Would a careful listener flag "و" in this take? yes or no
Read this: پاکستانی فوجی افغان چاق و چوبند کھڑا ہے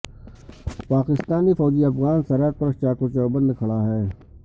no